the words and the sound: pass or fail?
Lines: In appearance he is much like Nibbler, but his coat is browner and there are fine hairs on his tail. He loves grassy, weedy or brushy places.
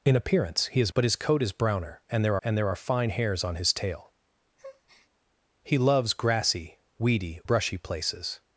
fail